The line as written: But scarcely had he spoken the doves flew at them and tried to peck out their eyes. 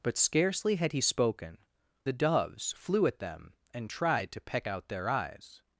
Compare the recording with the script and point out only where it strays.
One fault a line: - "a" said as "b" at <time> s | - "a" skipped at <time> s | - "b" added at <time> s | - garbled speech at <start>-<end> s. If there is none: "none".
none